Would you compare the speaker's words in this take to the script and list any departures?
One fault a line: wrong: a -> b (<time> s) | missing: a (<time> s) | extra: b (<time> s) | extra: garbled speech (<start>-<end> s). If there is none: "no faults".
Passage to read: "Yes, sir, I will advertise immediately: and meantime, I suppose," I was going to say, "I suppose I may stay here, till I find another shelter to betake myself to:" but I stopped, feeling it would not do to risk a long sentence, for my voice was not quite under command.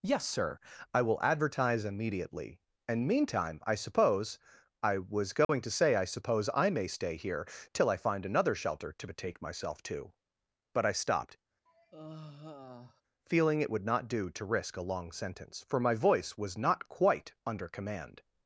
no faults